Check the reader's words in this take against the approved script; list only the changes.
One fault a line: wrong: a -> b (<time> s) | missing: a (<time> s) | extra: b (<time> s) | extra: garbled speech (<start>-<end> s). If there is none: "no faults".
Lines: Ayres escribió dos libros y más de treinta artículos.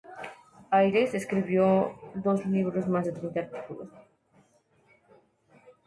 no faults